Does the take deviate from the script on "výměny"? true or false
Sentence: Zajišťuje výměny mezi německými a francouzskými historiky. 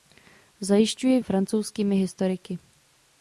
true